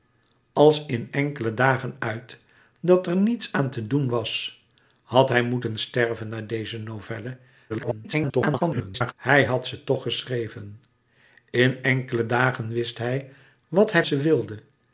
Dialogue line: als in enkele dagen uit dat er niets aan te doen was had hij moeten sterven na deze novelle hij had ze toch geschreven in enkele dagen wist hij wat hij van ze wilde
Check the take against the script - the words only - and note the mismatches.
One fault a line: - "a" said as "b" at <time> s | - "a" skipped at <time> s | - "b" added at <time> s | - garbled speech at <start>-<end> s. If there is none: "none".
- garbled speech at 7.7-9.1 s
- "van" skipped at 14.0 s